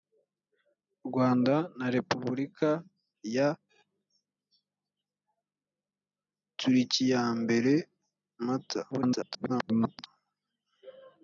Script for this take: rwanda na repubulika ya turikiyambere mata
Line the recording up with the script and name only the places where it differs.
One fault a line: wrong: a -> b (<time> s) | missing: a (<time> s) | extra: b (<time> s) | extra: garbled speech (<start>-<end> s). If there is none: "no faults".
extra: garbled speech (8.9-10.1 s)